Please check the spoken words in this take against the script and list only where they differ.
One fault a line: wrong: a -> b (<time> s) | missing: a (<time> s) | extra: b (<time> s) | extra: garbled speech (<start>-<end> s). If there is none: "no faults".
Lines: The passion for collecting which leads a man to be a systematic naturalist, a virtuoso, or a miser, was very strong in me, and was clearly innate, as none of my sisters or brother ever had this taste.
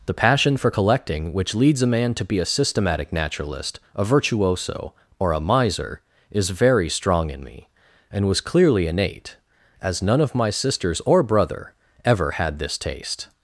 wrong: was -> is (6.3 s)